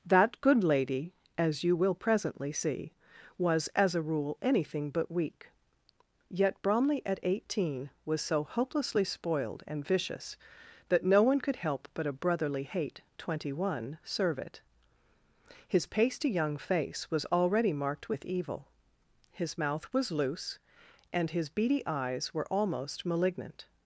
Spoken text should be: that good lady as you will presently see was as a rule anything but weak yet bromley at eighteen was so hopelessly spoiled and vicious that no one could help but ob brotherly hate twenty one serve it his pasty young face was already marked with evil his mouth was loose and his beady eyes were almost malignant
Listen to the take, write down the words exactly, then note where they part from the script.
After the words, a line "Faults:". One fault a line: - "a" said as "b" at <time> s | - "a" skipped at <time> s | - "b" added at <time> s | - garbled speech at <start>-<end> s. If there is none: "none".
that good lady as you will presently see was as a rule anything but weak yet bromley at eighteen was so hopelessly spoiled and vicious that no one could help but a brotherly hate twenty one serve it his pasty young face was already marked with evil his mouth was loose and his beady eyes were almost malignant
Faults:
- "ob" said as "a" at 12.1 s